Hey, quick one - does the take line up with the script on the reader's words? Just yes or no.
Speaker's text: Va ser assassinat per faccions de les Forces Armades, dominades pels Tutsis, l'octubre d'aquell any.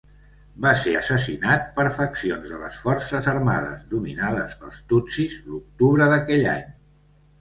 yes